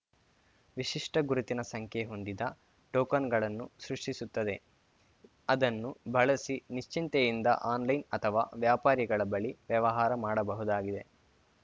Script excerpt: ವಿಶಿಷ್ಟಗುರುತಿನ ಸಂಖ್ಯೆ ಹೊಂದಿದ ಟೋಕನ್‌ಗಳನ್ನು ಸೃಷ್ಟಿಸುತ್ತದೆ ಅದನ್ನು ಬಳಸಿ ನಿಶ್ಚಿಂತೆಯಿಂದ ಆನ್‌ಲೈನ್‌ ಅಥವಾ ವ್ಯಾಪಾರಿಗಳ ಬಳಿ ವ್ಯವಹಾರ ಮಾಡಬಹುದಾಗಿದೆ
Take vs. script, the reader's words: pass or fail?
pass